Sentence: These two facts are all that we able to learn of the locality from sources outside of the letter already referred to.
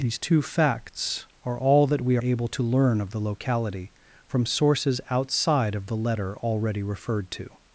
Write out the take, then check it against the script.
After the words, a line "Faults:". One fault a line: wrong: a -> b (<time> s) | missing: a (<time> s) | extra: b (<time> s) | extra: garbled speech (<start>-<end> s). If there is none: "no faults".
These two facts are all that we able to learn of the locality from sources outside of the letter already referred to.
Faults:
no faults